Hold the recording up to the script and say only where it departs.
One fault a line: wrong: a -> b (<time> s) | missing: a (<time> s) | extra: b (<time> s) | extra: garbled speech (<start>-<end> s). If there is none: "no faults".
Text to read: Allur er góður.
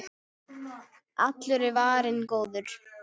extra: varinn (1.8 s)